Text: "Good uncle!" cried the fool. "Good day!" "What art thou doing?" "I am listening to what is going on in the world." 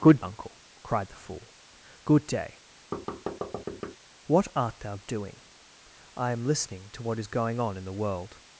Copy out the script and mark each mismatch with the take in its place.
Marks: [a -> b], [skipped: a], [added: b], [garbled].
"Good uncle!" cried the fool. "Good day!" "What art thou doing?" "I am listening to what is going on in the world."